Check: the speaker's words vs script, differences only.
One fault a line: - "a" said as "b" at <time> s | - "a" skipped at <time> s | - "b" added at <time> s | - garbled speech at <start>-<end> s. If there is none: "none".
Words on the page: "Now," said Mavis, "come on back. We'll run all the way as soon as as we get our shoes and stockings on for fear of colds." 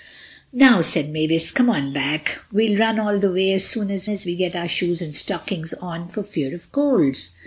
none